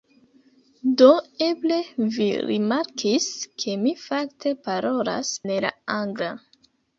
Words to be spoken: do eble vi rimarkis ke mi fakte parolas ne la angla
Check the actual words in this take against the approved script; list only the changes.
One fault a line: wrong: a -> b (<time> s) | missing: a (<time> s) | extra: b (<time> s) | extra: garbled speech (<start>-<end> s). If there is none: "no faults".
no faults